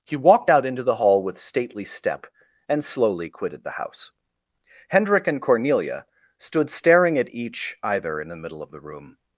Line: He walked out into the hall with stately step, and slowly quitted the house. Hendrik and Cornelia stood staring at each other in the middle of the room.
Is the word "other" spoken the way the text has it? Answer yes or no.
no